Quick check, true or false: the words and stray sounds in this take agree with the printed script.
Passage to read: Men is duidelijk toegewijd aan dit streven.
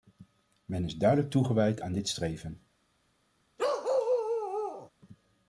false